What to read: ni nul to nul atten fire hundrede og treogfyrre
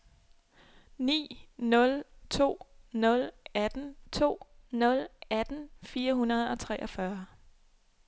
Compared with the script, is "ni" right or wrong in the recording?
right